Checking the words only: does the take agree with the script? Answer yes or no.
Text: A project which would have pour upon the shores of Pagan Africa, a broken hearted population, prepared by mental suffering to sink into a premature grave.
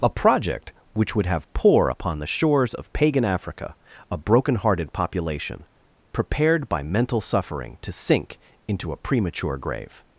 yes